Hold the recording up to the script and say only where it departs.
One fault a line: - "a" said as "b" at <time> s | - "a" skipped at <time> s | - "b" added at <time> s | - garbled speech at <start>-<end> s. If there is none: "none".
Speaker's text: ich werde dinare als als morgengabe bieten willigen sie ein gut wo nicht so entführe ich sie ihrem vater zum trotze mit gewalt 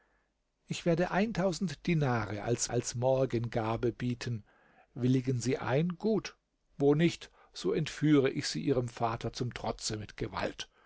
none